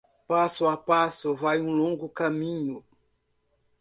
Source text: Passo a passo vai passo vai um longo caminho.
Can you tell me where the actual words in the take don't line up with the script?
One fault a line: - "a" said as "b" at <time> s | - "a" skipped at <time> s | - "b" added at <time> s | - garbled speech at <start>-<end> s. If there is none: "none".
- "passo vai" skipped at 1.6 s